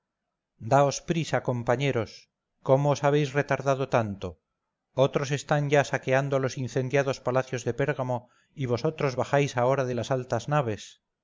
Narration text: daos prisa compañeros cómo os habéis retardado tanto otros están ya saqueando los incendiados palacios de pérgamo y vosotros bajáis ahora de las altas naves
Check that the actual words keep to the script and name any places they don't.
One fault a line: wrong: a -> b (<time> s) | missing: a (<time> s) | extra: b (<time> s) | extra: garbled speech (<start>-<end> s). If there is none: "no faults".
no faults